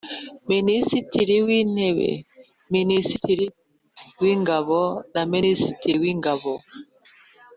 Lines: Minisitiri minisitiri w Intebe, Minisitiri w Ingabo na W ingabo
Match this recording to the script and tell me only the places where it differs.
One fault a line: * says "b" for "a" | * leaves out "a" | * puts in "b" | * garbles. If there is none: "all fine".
* leaves out "minisitiri"
* puts in "Minisitiri"